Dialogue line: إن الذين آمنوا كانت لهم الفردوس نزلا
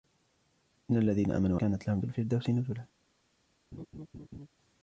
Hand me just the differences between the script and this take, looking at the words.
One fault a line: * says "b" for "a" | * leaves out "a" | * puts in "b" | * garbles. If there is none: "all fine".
all fine